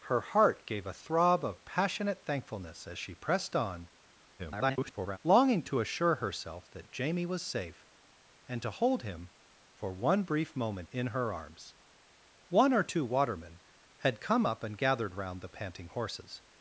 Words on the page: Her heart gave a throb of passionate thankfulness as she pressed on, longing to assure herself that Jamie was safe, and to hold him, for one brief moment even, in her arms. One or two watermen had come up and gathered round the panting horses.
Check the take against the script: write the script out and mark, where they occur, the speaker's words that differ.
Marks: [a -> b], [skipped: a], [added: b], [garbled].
Her heart gave a throb of passionate thankfulness as she pressed on, [garbled] longing to assure herself that Jamie was safe, and to hold him, for one brief moment [skipped: even,] in her arms. One or two watermen had come up and gathered round the panting horses.